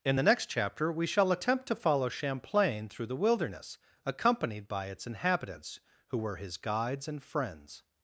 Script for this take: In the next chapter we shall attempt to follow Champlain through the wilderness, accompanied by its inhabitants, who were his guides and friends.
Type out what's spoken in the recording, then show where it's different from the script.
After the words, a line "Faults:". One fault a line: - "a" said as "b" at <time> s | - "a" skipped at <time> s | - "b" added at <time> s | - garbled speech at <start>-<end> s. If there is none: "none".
In the next chapter we shall attempt to follow Champlain through the wilderness, accompanied by its inhabitants, who were his guides and friends.
Faults:
none